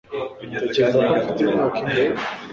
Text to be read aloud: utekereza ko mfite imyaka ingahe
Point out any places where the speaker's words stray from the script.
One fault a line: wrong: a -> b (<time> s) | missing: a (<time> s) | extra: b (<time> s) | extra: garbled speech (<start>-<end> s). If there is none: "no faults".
no faults